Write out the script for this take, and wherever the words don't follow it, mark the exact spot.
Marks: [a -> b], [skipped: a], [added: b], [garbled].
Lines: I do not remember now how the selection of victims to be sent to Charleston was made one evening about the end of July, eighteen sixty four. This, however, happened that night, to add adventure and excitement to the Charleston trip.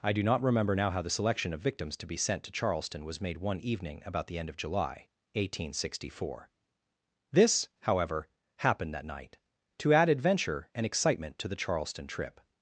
I do not remember now how the selection of victims to be sent to Charleston was made one evening about the end of July, eighteen sixty four. This, however, happened that night, to add adventure and excitement to the Charleston trip.